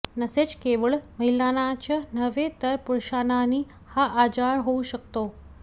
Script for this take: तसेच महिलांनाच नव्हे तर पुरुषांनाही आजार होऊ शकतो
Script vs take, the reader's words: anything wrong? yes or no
yes